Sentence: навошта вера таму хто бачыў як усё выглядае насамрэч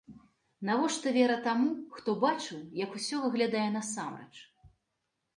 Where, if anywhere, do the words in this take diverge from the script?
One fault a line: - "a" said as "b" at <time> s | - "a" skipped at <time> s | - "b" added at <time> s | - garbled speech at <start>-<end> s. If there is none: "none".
none